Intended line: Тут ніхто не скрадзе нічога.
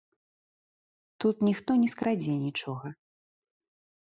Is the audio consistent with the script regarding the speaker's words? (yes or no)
yes